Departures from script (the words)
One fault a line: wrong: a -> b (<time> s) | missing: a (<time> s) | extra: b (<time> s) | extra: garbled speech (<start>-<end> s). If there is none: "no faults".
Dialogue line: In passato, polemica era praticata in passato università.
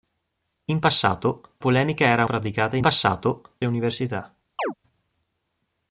no faults